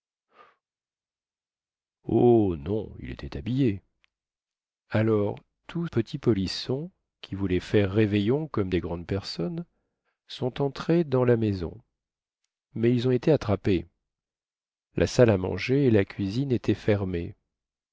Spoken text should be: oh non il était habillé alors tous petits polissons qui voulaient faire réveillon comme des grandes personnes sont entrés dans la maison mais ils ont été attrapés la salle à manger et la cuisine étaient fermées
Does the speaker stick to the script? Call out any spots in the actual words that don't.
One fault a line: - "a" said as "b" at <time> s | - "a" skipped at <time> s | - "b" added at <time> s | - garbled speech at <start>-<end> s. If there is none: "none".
none